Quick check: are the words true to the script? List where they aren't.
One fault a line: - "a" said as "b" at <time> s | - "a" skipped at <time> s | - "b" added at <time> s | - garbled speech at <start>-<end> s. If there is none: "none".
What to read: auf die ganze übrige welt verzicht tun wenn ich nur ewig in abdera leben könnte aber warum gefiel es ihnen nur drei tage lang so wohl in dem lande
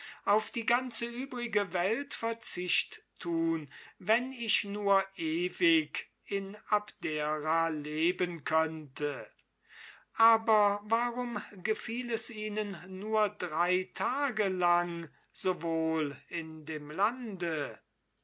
none